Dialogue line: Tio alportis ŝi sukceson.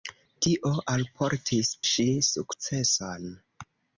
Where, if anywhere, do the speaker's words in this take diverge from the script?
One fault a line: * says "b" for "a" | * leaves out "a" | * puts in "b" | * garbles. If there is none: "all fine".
all fine